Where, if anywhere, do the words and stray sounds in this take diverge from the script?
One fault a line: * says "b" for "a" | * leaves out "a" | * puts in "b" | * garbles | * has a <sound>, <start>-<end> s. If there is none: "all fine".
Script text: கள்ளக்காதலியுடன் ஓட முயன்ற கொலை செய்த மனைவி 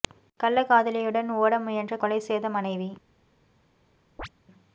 * has a chirp, 4.2-4.3 s